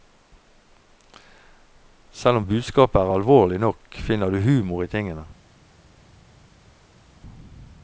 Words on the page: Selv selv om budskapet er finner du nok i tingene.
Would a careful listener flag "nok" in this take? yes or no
yes